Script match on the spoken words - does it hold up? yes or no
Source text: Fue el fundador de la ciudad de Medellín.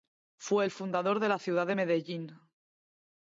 yes